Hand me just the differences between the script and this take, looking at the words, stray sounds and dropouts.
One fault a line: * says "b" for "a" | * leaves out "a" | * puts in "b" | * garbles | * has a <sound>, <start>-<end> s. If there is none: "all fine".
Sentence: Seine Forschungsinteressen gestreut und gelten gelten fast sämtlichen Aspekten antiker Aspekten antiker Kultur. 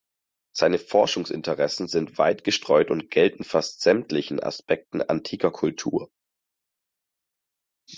* puts in "sind weit"
* leaves out "gelten"
* leaves out "Aspekten antiker"